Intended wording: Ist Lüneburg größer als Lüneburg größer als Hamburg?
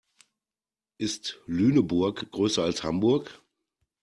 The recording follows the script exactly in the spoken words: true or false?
false